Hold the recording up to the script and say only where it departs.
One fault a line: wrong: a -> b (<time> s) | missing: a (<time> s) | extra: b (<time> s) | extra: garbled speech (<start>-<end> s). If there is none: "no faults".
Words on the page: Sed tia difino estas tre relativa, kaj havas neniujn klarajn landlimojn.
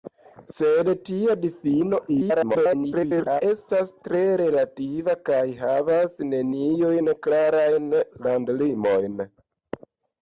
extra: garbled speech (2.1-3.4 s)